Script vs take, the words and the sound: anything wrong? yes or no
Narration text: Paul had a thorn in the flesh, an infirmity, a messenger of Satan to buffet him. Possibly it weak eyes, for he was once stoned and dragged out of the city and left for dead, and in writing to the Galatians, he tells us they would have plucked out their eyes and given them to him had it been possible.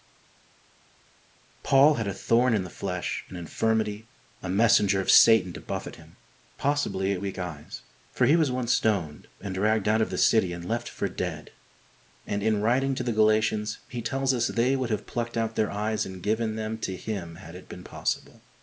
no